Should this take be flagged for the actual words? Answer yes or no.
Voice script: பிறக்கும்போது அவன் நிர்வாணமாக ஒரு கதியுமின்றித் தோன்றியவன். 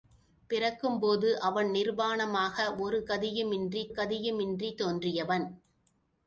yes